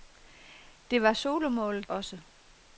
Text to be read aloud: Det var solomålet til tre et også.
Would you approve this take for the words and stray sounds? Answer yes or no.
no